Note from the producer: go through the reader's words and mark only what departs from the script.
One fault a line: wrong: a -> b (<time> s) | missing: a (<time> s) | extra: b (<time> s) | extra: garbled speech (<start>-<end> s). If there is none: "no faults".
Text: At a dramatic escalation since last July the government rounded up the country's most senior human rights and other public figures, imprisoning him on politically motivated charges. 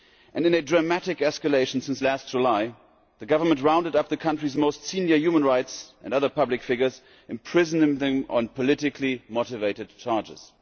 wrong: At -> In (0.3 s)
wrong: him -> them (8.0 s)